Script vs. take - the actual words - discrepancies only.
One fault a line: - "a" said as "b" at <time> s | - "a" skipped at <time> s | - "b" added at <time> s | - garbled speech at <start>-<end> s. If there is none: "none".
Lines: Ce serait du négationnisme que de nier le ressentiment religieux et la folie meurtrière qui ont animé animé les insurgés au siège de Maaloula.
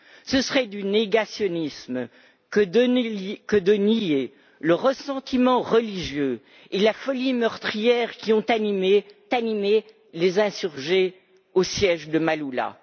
none